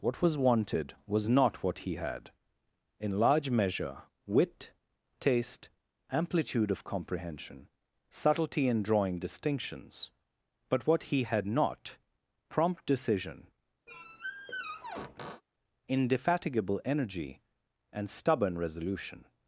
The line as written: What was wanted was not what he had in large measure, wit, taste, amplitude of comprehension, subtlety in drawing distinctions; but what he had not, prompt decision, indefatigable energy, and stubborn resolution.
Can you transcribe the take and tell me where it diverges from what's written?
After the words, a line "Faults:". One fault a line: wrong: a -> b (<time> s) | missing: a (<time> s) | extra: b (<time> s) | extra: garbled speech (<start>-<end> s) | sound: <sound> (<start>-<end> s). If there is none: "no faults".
What was wanted was not what he had in large measure, wit, taste, amplitude of comprehension, subtlety in drawing distinctions; but what he had not, prompt decision, indefatigable energy, and stubborn resolution.
Faults:
sound: squeak (13.9-15.4 s)